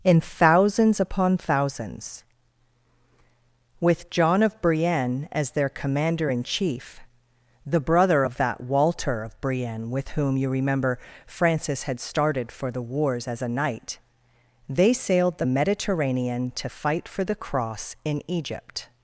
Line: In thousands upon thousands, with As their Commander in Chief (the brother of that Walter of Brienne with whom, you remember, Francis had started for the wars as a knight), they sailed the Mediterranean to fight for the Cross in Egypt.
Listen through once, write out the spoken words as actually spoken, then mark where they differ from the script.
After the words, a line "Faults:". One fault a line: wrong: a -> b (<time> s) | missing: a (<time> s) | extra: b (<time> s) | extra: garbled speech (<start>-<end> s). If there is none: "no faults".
In thousands upon thousands, with John of Brienne as their Commander in Chief (the brother of that Walter of Brienne with whom, you remember, Francis had started for the wars as a knight), they sailed the Mediterranean to fight for the Cross in Egypt.
Faults:
extra: John of Brienne (4.1 s)